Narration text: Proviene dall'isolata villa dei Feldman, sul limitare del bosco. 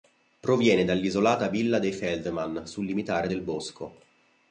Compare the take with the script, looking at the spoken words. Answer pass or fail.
pass